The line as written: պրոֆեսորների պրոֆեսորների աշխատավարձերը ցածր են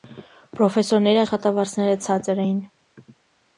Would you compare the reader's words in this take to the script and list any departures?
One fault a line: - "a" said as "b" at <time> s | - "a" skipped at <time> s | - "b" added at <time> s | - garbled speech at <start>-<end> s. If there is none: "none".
- "պրոֆեսորների" skipped at 1.2 s
- "են" said as "էին" at 2.5 s